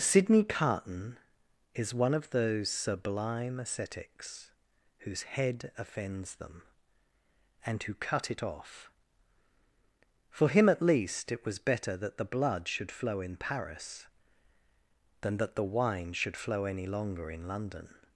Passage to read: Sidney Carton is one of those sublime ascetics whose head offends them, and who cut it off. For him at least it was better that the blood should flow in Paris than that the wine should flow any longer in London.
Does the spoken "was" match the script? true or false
true